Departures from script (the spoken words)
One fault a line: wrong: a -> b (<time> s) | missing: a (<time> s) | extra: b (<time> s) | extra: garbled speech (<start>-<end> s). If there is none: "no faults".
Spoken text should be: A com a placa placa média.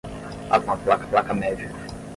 no faults